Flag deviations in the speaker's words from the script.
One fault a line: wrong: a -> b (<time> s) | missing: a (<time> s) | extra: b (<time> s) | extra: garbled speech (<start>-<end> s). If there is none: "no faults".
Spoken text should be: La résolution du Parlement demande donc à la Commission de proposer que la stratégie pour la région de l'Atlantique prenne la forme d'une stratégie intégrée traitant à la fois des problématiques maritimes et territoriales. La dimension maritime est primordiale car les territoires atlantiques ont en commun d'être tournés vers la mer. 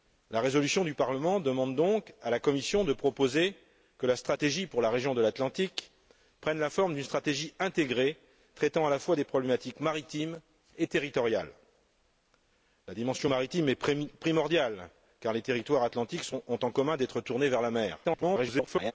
extra: garbled speech (18.0-18.9 s)